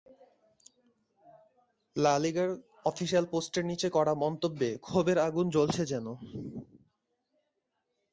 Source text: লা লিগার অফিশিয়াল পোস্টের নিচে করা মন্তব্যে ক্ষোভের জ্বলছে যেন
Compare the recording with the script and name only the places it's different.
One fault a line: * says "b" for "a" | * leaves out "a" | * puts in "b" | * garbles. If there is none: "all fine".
* puts in "আগুন"